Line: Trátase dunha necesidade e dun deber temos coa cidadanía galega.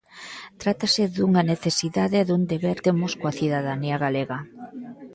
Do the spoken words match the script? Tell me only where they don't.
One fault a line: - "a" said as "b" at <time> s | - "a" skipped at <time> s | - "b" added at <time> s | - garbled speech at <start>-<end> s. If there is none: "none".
none